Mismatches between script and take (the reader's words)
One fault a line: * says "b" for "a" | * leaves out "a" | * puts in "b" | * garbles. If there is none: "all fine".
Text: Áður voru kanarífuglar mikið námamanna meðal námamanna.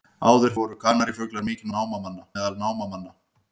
all fine